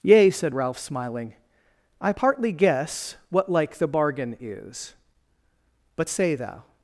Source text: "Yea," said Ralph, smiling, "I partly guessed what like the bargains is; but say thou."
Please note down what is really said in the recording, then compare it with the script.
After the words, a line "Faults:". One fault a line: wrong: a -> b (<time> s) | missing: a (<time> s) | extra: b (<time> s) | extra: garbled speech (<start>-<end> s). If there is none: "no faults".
"Yea," said Ralph, smiling, "I partly guess what like the bargain is; but say thou."
Faults:
wrong: guessed -> guess (2.5 s)
wrong: bargains -> bargain (3.9 s)